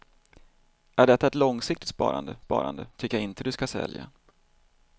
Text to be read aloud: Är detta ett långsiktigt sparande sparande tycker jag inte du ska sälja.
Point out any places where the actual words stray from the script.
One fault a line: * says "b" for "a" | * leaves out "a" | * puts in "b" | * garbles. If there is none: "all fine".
all fine